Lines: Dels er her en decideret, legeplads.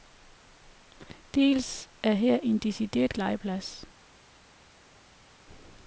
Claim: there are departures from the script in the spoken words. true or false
false